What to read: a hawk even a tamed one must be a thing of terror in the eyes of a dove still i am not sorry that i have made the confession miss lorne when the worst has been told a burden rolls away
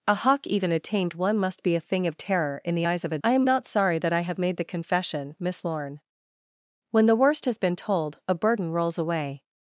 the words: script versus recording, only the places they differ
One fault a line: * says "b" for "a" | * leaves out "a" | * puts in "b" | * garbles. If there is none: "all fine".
* leaves out "dove still"